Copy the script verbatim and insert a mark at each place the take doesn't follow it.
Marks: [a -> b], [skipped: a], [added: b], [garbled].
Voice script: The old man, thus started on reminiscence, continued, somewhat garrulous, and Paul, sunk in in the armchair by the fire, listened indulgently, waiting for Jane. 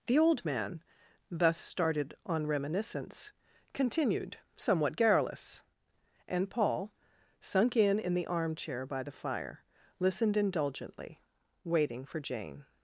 The old man, thus started on reminiscence, continued, somewhat garrulous, and Paul, sunk in in the armchair by the fire, listened indulgently, waiting for Jane.